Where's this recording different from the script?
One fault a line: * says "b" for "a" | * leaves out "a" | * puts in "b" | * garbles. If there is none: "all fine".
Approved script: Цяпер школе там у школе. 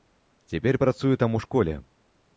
* says "працуе" for "школе"